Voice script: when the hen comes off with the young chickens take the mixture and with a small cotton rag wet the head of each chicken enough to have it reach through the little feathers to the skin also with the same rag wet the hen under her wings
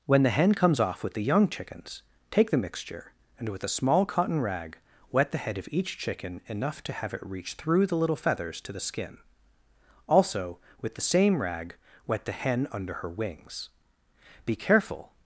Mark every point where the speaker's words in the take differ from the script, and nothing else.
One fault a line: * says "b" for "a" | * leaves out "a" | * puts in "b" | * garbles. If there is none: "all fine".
* puts in "be careful"